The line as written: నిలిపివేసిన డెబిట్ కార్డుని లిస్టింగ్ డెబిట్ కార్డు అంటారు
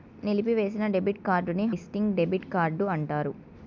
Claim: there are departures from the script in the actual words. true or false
false